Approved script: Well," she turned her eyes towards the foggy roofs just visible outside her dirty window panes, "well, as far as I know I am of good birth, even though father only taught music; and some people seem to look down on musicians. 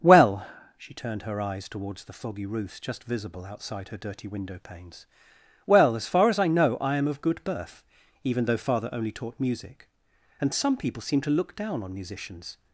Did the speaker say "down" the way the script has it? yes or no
yes